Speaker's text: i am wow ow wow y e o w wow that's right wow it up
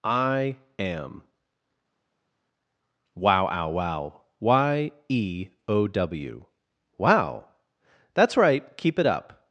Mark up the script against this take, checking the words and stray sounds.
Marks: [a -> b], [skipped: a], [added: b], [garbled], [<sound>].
i am wow ow wow y e o w wow that's right [wow -> keep] it up